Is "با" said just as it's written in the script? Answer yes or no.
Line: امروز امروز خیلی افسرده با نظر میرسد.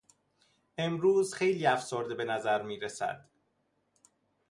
no